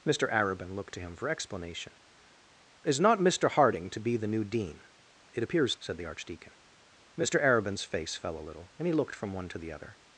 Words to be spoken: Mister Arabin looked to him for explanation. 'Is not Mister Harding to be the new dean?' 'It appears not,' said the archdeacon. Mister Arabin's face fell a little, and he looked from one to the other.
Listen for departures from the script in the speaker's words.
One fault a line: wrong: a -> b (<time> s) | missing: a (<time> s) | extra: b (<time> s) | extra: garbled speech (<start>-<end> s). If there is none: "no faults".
missing: not (5.8 s)